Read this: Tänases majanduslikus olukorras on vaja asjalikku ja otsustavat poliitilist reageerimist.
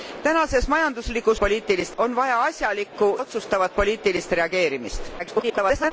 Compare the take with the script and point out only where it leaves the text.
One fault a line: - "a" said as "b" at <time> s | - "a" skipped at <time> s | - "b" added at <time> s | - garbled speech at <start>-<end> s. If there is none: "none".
- "olukorras" said as "poliitilist" at 1.4 s
- "ja" skipped at 3.2 s
- garbled speech at 5.2-5.9 s